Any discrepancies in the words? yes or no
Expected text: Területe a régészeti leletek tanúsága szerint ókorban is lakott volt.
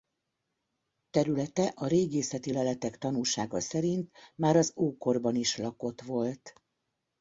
yes